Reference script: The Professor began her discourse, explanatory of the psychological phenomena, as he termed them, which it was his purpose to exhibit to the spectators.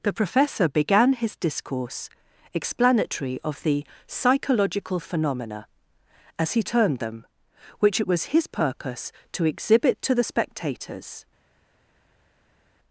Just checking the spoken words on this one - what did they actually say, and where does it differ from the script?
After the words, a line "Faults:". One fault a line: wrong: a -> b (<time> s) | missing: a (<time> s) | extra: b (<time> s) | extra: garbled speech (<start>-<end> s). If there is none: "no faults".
The Professor began his discourse, explanatory of the psychological phenomena, as he termed them, which it was his purpose to exhibit to the spectators.
Faults:
wrong: her -> his (1.1 s)